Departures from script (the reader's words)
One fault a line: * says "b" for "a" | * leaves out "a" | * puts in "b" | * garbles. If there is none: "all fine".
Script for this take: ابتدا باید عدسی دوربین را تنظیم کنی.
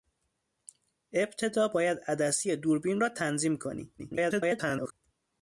* garbles